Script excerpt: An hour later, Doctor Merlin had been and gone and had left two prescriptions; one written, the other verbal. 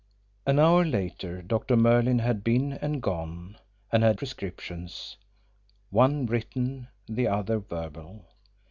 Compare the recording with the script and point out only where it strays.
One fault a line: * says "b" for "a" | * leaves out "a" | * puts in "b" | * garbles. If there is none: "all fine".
* leaves out "left two"